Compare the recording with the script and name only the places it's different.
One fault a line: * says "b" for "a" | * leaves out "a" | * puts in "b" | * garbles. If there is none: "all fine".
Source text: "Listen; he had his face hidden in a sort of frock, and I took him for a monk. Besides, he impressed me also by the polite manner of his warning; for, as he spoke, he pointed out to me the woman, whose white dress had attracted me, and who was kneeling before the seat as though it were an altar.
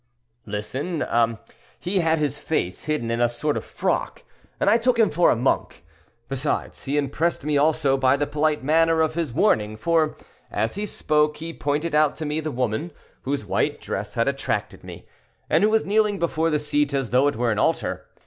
all fine